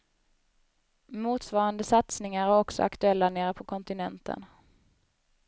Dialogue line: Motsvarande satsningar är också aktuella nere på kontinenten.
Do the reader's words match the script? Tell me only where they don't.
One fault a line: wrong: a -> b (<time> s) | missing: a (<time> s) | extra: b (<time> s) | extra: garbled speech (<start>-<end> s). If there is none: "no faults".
no faults